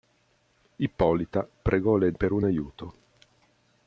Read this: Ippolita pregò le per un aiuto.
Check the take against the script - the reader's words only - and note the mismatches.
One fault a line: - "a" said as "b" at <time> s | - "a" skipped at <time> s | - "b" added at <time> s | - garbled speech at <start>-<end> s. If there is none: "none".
none